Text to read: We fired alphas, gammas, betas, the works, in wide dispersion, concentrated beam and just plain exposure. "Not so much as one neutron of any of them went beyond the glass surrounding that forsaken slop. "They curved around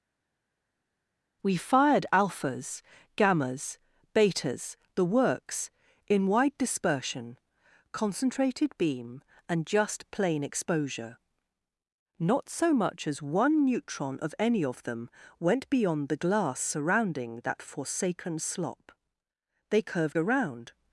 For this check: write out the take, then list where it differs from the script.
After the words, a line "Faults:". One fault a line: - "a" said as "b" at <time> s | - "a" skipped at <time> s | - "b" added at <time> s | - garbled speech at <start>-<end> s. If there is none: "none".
We fired alphas, gammas, betas, the works, in wide dispersion, concentrated beam and just plain exposure. "Not so much as one neutron of any of them went beyond the glass surrounding that forsaken slop. "They curved around
Faults:
none